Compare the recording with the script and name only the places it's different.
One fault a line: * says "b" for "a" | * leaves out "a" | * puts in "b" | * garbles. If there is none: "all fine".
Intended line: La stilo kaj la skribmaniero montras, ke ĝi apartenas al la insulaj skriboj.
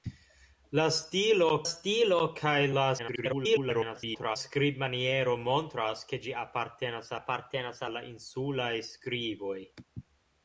* puts in "stilo"
* garbles
* puts in "apartenas"